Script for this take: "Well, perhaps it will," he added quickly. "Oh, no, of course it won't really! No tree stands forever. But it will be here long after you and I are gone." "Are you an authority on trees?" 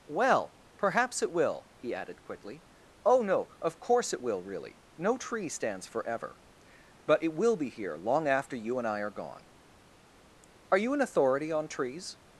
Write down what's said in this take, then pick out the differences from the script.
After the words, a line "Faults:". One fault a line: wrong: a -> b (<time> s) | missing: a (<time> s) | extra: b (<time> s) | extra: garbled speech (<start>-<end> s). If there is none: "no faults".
"Well, perhaps it will," he added quickly. "Oh, no, of course it will really! No tree stands forever. But it will be here long after you and I are gone." "Are you an authority on trees?"
Faults:
wrong: won't -> will (4.2 s)